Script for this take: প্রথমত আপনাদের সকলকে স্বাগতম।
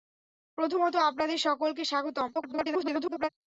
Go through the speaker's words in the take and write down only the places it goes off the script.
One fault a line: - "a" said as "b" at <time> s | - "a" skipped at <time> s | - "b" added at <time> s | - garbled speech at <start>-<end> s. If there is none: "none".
- garbled speech at 2.3-3.3 s